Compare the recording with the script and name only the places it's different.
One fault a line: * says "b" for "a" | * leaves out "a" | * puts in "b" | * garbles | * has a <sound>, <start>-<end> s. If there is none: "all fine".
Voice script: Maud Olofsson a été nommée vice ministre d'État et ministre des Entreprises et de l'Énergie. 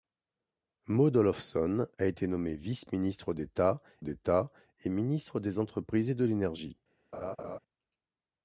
* puts in "d'État"
* has a laugh, 7.1-7.6 s